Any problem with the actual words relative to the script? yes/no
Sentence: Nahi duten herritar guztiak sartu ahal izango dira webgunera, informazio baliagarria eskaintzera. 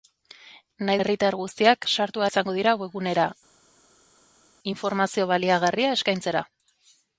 yes